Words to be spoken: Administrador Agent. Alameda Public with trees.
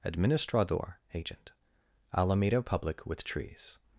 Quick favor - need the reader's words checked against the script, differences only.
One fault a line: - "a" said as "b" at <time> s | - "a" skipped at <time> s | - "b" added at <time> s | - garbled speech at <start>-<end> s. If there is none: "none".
none